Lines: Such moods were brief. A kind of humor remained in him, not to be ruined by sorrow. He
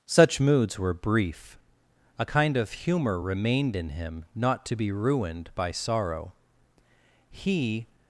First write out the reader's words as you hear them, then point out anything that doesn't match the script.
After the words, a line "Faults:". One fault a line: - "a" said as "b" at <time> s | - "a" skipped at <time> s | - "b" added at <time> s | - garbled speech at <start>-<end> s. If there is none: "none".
Such moods were brief. A kind of humor remained in him, not to be ruined by sorrow. He
Faults:
none